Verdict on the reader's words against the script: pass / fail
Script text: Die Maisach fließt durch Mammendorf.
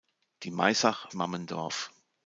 fail